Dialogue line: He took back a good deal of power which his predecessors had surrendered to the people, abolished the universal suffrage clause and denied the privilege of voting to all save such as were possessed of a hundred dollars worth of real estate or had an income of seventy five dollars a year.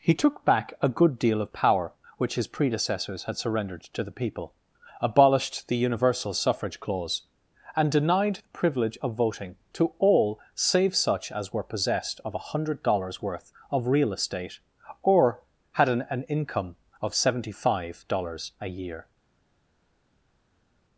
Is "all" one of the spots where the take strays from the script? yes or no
no